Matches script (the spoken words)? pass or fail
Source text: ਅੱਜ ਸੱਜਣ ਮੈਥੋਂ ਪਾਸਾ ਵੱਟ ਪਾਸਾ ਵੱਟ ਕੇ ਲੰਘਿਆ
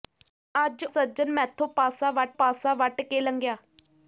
pass